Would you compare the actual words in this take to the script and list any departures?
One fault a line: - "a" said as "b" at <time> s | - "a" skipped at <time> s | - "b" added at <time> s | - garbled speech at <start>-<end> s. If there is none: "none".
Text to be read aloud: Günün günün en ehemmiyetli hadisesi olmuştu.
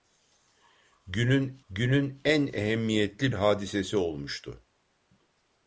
none